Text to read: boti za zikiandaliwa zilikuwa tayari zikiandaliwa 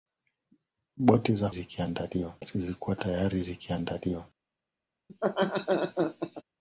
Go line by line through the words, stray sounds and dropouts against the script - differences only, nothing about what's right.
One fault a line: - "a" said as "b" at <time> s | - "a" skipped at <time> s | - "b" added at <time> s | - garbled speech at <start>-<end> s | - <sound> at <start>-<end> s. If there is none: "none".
- laugh at 5.1-6.4 s